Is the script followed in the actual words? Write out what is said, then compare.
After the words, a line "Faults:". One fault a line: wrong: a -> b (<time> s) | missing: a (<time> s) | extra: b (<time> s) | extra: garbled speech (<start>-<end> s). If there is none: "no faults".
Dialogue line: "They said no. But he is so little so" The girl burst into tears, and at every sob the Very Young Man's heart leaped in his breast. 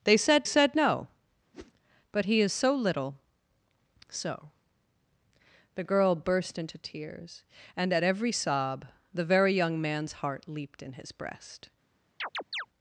"They said said no. But he is so little so" The girl burst into tears, and at every sob the Very Young Man's heart leaped in his breast.
Faults:
extra: said (0.4 s)